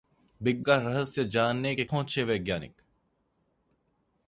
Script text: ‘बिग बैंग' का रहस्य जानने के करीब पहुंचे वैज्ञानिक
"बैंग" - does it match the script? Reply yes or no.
no